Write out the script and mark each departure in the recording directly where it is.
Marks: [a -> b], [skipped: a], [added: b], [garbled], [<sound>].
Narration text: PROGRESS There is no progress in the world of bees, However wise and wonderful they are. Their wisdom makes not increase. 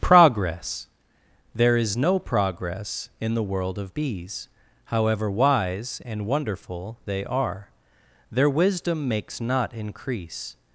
PROGRESS There is no progress in the world of bees, However wise and wonderful they are. Their wisdom makes not increase.